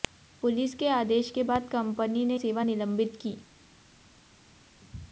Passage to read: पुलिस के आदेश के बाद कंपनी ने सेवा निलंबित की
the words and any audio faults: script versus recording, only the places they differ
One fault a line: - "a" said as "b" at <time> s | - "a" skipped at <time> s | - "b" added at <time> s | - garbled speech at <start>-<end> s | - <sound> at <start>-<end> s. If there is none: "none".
none